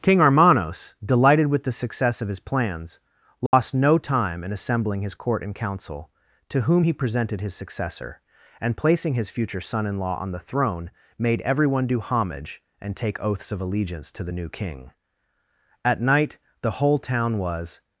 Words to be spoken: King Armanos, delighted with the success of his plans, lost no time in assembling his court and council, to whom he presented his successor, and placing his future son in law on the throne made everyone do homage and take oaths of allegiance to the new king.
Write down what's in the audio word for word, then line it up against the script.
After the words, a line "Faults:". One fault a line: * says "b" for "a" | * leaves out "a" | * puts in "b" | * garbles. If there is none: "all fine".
King Armanos, delighted with the success of his plans, lost no time in assembling his court and council, to whom he presented his successor, and placing his future son in law on the throne made everyone do homage and take oaths of allegiance to the new king. At night the whole town was
Faults:
* puts in "At night the whole town was"